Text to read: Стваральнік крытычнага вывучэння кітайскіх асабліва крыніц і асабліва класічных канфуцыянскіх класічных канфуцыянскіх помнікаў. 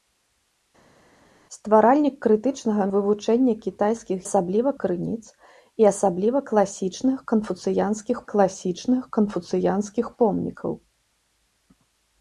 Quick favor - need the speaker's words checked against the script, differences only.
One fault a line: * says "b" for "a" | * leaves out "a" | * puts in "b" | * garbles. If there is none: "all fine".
all fine